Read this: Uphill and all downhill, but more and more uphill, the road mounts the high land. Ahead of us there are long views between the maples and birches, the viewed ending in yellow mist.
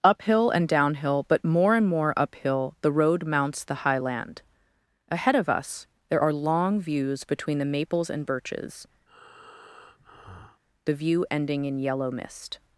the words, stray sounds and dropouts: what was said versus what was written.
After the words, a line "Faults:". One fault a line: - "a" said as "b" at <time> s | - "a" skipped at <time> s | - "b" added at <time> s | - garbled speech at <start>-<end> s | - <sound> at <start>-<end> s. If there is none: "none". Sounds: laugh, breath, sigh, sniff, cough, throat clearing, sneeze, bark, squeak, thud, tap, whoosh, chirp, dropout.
Uphill and downhill, but more and more uphill, the road mounts the high land. Ahead of us there are long views between the maples and birches, the view ending in yellow mist.
Faults:
- "all" skipped at 0.7 s
- breath at 9.1-10.6 s
- "viewed" said as "view" at 10.9 s